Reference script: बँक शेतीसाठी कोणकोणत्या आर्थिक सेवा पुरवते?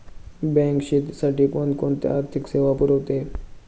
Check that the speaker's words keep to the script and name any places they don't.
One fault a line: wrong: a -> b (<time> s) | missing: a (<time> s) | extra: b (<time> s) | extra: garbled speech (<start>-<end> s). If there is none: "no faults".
no faults